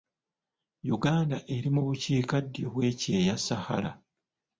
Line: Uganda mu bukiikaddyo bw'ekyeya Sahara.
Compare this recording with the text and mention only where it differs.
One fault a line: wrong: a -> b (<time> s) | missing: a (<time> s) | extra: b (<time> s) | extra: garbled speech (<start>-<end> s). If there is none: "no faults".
extra: eri (1.6 s)